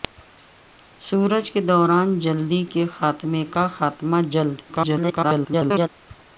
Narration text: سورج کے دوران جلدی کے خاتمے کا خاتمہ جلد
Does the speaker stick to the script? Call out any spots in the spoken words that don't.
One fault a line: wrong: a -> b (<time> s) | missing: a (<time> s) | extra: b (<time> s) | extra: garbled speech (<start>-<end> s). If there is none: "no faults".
extra: garbled speech (4.7-5.9 s)